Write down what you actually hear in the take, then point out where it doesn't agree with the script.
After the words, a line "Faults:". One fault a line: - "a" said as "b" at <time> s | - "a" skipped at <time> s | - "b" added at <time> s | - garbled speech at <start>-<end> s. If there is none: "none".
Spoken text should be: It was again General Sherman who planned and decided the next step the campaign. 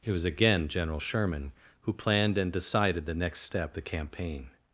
It was again General Sherman who planned and decided the next step the campaign.
Faults:
none